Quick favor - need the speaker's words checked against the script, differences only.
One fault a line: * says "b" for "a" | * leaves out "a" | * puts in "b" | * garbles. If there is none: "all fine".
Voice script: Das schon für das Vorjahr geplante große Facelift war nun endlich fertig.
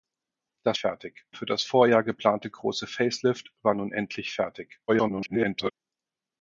* says "fertig" for "schon"
* garbles